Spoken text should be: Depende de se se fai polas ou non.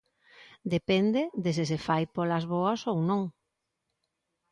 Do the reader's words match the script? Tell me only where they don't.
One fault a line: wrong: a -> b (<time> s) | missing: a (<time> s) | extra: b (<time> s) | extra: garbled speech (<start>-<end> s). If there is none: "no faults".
extra: boas (2.5 s)